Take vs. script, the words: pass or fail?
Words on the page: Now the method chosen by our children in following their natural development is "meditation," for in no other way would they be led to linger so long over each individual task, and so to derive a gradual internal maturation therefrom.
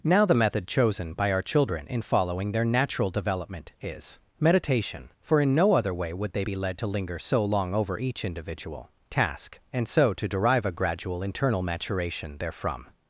pass